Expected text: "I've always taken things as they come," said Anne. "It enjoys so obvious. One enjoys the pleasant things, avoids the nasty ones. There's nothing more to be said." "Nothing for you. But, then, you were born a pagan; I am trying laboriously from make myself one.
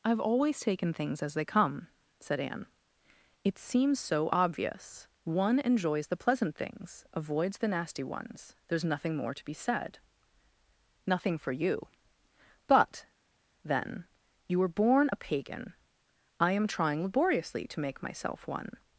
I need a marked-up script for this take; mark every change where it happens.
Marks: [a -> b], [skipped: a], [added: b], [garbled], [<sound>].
"I've always taken things as they come," said Anne. "It [enjoys -> seems] so obvious. One enjoys the pleasant things, avoids the nasty ones. There's nothing more to be said." "Nothing for you. But, then, you were born a pagan; I am trying laboriously [from -> to] make myself one.